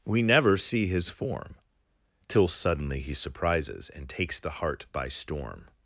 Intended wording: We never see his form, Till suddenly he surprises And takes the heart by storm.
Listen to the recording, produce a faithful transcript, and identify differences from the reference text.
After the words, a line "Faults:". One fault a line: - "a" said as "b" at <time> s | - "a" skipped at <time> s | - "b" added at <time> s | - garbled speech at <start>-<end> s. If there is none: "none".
We never see his form, Till suddenly he surprises And takes the heart by storm.
Faults:
none